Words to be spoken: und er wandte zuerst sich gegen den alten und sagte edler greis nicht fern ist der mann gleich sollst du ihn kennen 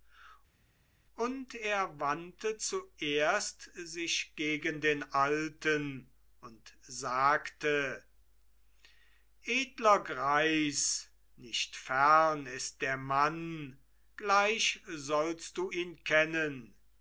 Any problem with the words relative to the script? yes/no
no